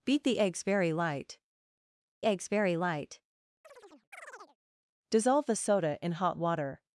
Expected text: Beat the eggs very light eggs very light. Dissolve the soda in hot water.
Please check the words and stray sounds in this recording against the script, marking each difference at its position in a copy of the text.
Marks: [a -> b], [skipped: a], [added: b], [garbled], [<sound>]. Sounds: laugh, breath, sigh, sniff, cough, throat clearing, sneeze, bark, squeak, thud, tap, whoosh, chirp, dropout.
Beat the eggs very light eggs very light. [chirp] Dissolve the soda in hot water.